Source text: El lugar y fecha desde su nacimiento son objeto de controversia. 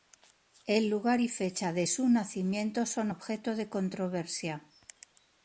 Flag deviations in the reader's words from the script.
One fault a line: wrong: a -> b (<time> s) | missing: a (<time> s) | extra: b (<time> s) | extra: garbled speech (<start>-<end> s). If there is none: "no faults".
wrong: desde -> de (1.7 s)